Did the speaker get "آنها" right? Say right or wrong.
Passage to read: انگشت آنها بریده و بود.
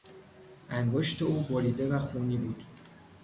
wrong